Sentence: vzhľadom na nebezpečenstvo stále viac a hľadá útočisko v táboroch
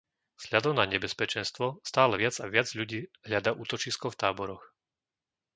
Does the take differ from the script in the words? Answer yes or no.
yes